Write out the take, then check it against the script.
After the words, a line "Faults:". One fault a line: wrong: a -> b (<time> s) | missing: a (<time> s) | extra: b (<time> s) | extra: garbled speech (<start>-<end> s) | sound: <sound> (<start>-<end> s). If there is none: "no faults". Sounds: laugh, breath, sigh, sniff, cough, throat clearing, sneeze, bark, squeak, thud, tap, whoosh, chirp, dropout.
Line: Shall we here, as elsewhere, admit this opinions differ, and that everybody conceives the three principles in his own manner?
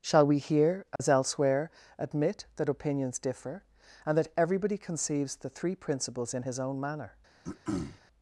Shall we here, as elsewhere, admit that opinions differ, and that everybody conceives the three principles in his own manner?
Faults:
sound: dropout (1.0-1.0 s)
wrong: this -> that (2.5 s)
sound: throat clearing (7.4-8.0 s)